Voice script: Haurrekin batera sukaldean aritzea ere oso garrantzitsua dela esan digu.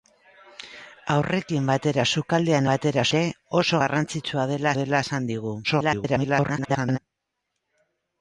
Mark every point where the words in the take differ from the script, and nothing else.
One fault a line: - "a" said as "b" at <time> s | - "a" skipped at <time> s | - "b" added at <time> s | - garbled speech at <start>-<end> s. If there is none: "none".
- "aritzea" said as "batera" at 2.7 s
- "dela" added at 4.8 s
- garbled speech at 5.6-7.0 s